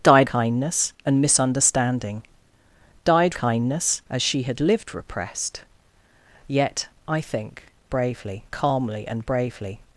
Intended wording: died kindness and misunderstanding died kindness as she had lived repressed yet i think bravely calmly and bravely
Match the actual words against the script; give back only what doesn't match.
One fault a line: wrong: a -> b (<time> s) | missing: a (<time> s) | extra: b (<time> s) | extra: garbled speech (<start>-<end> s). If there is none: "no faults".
no faults